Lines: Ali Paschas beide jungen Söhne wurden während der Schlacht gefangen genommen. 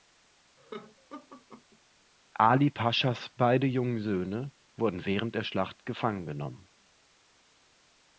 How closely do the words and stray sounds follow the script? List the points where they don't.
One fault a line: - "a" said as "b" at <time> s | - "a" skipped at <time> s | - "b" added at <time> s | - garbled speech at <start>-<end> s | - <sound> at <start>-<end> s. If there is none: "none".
- laugh at 0.6-1.8 s